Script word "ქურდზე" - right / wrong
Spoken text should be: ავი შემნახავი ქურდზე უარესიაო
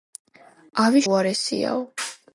wrong